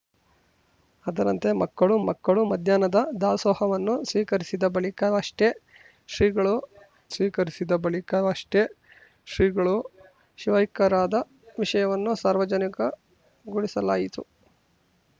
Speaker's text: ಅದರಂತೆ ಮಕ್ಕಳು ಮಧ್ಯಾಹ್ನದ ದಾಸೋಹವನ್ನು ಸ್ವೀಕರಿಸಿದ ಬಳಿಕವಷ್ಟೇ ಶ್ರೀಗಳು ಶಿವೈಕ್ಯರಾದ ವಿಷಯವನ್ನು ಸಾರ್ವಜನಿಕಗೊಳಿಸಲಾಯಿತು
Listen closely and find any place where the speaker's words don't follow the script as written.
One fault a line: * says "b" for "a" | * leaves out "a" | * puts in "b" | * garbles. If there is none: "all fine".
* puts in "ಮಕ್ಕಳು"
* puts in "ಸ್ವೀಕರಿಸಿದ ಬಳಿಕವಷ್ಟೇ ಶ್ರೀಗಳು"